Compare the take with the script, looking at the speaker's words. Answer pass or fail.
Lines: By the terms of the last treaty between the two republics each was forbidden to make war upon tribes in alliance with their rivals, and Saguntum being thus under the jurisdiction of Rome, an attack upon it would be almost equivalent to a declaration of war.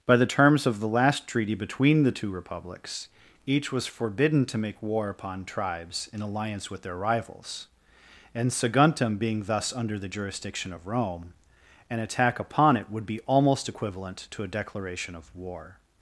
pass